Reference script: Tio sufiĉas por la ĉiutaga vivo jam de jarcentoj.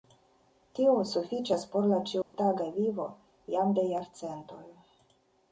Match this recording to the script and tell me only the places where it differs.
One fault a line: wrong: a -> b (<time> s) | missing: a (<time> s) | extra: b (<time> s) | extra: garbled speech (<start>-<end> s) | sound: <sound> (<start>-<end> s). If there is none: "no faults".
sound: dropout (2.2-2.3 s)